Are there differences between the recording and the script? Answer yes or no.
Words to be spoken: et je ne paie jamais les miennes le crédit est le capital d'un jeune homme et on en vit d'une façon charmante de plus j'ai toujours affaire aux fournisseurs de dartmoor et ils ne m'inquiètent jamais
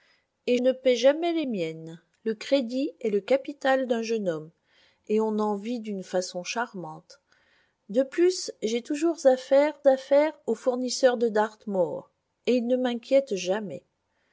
yes